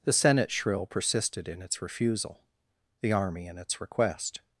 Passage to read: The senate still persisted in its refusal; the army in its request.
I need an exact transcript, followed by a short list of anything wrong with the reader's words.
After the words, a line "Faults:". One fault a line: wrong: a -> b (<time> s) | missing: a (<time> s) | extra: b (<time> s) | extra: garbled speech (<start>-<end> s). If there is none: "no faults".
The senate shrill persisted in its refusal; the army in its request.
Faults:
wrong: still -> shrill (0.5 s)